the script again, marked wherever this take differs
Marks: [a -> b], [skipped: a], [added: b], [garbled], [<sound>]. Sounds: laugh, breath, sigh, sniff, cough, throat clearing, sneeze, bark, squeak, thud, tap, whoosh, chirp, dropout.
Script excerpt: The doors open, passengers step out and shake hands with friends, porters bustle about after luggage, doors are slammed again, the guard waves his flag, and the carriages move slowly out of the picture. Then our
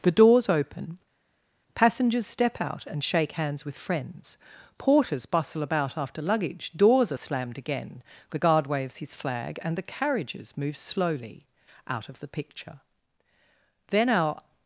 The doors open, passengers step out and shake hands with friends, porters bustle about after luggage, doors are slammed again, the guard waves his flag, and the carriages move slowly out of the picture. Then our